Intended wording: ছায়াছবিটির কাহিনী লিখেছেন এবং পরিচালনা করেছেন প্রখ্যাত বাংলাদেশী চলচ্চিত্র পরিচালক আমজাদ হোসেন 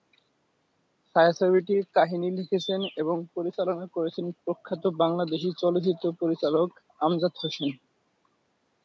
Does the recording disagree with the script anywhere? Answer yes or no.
no